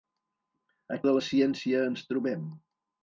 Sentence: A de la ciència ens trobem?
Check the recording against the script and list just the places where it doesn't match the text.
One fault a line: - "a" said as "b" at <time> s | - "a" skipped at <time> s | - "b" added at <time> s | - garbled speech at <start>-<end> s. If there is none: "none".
none